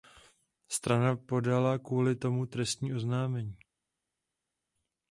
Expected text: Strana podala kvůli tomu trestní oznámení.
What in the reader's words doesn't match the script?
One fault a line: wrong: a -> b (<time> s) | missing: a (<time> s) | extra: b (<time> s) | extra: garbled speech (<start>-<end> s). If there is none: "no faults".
no faults